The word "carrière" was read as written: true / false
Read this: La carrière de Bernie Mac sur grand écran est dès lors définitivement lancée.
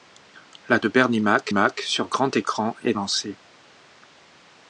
false